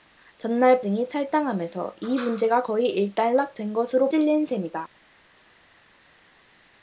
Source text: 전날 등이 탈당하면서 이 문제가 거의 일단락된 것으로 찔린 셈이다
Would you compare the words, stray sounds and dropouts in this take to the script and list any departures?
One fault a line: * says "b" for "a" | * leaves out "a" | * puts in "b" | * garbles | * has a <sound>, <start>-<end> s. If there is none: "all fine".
all fine